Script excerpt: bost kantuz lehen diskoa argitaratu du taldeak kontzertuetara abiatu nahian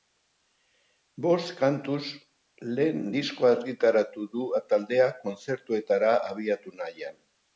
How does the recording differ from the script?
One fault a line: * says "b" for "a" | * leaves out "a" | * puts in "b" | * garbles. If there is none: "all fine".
all fine